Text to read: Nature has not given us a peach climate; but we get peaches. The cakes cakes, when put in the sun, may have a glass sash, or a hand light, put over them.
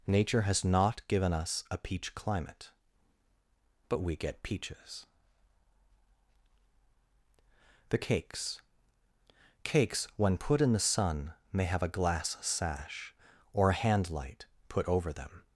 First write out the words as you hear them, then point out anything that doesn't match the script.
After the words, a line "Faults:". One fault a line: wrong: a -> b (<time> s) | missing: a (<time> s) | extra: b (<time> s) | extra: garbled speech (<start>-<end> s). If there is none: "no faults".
Nature has not given us a peach climate; but we get peaches. The cakes cakes, when put in the sun, may have a glass sash, or a hand light, put over them.
Faults:
no faults